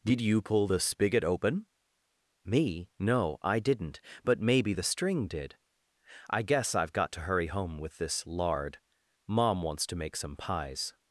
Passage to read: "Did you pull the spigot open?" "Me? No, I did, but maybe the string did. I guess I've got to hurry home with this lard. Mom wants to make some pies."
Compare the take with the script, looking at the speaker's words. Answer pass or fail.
fail